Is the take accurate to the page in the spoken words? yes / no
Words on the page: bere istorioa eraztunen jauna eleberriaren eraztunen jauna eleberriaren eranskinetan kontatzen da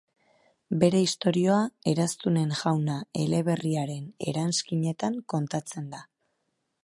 no